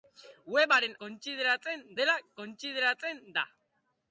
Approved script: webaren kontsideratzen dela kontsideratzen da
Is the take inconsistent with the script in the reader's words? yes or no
no